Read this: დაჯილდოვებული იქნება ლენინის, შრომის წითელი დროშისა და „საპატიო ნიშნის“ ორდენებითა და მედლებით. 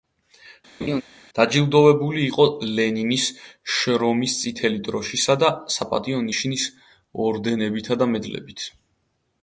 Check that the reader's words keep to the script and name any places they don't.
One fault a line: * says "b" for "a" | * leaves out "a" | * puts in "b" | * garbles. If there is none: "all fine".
* says "იყო" for "იქნება"